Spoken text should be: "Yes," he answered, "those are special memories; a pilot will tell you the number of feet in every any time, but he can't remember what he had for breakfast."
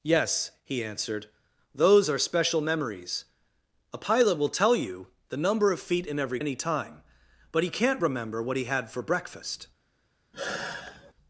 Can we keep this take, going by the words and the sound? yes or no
no